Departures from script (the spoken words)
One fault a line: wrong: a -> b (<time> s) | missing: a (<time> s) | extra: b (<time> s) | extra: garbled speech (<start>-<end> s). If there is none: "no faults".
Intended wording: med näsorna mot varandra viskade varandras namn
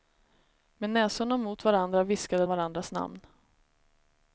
no faults